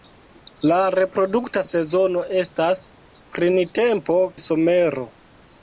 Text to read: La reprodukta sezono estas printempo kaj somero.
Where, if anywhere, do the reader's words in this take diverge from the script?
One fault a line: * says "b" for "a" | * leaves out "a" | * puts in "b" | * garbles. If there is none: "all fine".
* leaves out "kaj"